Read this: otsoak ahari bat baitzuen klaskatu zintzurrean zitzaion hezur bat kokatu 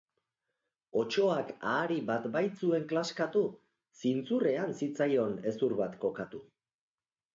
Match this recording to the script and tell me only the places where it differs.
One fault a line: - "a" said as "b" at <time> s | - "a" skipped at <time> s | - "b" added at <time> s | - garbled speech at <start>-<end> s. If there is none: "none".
none